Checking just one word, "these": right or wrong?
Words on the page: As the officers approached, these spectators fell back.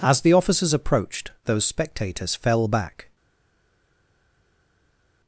wrong